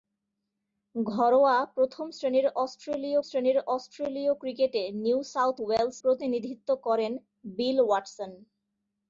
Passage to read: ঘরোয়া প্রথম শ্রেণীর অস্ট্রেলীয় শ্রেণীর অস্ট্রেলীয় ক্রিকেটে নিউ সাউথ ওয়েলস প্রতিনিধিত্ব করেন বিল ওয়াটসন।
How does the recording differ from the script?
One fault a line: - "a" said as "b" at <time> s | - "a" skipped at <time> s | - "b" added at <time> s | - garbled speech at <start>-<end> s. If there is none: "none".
none